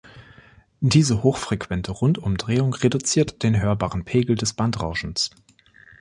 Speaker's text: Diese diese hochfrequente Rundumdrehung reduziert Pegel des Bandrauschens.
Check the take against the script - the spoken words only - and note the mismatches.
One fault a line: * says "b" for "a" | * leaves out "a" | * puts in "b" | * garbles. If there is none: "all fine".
* leaves out "diese"
* puts in "den hörbaren"